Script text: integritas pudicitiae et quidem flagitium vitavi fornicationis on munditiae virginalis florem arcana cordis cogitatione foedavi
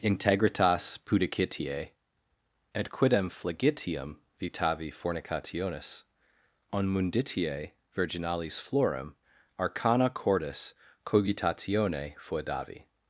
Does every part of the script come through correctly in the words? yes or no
yes